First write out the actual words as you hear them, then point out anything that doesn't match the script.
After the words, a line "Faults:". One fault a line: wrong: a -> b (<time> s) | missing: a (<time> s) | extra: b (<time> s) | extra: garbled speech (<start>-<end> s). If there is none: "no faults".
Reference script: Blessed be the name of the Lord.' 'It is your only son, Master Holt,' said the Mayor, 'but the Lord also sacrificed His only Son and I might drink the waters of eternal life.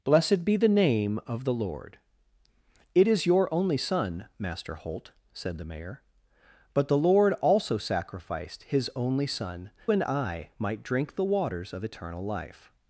Blessed be the name of the Lord.' 'It is your only son, Master Holt,' said the Mayor, 'but the Lord also sacrificed His only Son and I might drink the waters of eternal life.
Faults:
no faults